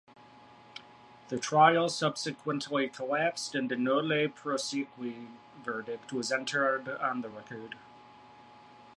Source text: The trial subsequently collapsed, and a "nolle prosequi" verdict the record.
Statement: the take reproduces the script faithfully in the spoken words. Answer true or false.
false